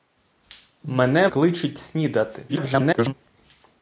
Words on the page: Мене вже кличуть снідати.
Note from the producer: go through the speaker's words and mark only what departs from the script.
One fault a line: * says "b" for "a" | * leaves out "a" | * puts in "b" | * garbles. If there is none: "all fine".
* leaves out "вже"
* garbles